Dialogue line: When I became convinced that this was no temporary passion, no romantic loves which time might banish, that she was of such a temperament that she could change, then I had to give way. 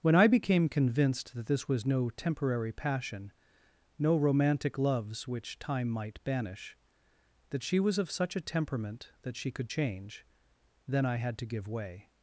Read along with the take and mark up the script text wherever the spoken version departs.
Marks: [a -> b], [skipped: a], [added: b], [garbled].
When I became convinced that this was no temporary passion, no romantic loves which time might banish, that she was of such a temperament that she could change, then I had to give way.